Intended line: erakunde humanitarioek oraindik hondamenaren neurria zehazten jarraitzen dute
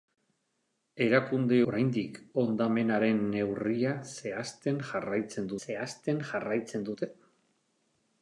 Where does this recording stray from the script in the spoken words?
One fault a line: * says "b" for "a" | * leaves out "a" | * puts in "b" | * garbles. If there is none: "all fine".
* leaves out "humanitarioek"
* puts in "zehazten jarraitzen"